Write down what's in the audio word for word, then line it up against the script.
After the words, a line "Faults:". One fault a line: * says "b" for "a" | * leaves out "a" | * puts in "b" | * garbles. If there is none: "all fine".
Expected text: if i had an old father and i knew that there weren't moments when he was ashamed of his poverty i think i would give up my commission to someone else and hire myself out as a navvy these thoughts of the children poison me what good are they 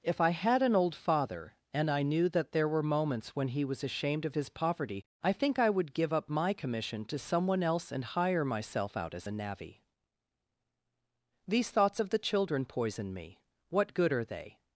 if i had an old father and i knew that there were moments when he was ashamed of his poverty i think i would give up my commission to someone else and hire myself out as a navvy these thoughts of the children poison me what good are they
Faults:
* says "were" for "weren't"